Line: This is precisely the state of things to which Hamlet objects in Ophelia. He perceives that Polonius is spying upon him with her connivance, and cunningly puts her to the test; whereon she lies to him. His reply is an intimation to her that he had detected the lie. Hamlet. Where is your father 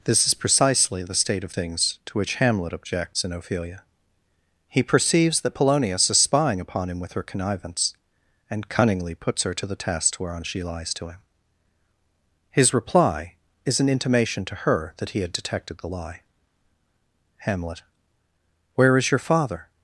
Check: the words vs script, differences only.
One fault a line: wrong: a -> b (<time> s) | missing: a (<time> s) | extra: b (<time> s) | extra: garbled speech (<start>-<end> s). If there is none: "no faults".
no faults